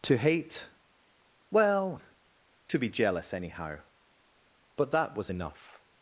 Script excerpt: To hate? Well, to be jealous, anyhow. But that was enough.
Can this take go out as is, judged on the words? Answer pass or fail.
pass